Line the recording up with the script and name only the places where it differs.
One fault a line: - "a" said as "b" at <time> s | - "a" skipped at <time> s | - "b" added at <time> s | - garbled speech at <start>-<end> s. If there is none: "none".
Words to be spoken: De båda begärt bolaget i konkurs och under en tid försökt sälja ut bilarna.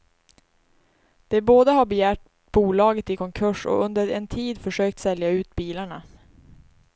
- "har" added at 1.7 s